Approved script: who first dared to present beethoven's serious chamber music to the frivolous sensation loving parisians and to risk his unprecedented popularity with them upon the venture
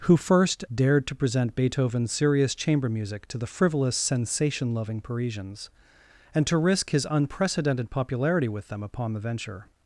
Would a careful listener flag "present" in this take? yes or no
no